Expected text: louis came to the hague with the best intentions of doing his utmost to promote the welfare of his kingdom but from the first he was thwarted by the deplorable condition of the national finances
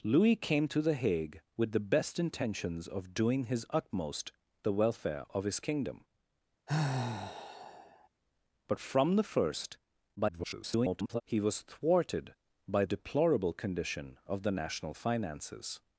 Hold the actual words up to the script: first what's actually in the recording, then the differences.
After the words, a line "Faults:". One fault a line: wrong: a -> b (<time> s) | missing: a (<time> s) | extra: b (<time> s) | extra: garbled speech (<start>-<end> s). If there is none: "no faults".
louis came to the hague with the best intentions of doing his utmost the welfare of his kingdom but from the first [garbled] he was thwarted by deplorable condition of the national finances
Faults:
missing: to promote (4.3 s)
extra: garbled speech (10.2-11.2 s)
missing: the (12.8 s)